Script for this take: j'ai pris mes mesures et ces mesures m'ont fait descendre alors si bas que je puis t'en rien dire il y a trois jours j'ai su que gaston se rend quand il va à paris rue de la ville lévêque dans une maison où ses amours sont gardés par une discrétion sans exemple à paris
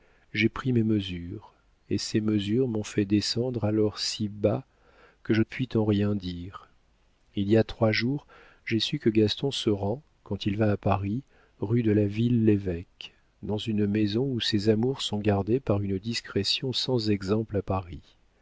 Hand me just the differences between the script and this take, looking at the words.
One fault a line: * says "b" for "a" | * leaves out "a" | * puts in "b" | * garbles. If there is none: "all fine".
all fine